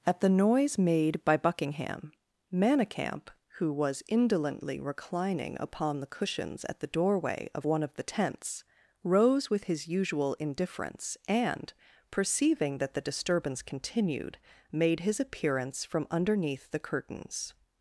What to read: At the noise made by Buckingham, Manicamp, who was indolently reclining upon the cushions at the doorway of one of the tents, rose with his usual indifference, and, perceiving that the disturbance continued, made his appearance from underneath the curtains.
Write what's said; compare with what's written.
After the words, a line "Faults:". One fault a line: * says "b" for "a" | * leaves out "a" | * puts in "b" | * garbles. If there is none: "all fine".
At the noise made by Buckingham, Manicamp, who was indolently reclining upon the cushions at the doorway of one of the tents, rose with his usual indifference, and, perceiving that the disturbance continued, made his appearance from underneath the curtains.
Faults:
all fine